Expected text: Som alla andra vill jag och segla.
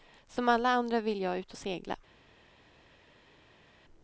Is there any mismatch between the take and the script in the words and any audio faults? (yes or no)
yes